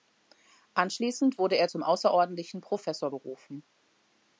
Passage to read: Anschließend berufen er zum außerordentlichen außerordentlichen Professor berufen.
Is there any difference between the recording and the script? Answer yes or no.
yes